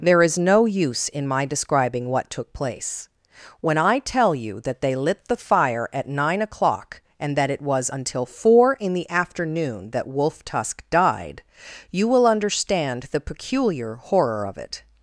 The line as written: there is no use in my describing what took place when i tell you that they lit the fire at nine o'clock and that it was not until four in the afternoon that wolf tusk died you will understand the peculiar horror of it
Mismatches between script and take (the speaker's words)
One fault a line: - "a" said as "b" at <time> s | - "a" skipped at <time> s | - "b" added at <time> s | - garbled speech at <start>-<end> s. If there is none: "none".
- "not" skipped at 7.9 s